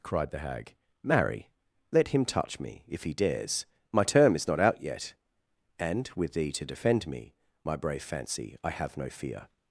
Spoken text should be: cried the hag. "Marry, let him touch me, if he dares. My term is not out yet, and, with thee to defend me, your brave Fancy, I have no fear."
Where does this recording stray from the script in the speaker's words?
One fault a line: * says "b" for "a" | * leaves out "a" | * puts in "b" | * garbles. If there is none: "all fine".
* says "my" for "your"